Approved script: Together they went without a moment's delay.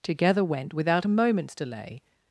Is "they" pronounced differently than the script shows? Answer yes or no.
yes